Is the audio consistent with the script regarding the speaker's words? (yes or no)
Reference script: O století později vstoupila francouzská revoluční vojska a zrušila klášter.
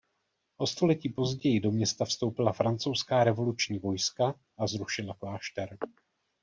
no